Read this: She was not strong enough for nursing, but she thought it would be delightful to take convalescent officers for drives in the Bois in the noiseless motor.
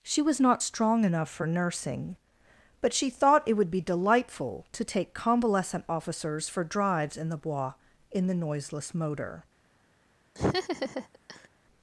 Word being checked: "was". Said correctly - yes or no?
yes